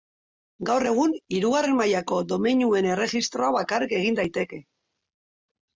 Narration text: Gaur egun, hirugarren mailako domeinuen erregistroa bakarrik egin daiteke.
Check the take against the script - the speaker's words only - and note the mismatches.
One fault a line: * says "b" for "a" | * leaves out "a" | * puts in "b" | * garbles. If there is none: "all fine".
all fine